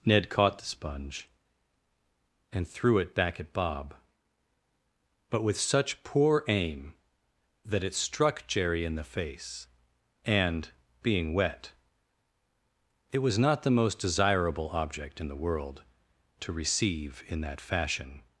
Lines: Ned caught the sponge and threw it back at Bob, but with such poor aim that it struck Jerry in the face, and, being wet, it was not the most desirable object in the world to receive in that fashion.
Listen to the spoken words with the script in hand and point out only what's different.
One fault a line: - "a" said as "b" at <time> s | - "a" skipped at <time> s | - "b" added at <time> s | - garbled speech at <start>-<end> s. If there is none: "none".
none